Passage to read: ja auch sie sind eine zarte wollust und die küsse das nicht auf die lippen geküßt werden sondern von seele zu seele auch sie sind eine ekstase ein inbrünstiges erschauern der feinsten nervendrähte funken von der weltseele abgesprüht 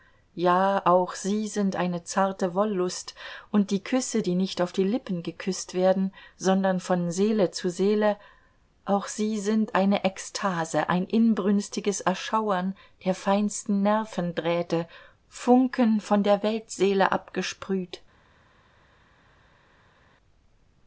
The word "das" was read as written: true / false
false